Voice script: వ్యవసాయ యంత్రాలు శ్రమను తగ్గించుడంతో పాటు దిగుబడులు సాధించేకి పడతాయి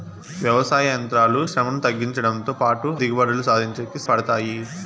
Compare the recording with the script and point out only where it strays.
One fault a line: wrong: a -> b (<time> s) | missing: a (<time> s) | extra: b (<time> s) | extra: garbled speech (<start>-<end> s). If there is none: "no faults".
no faults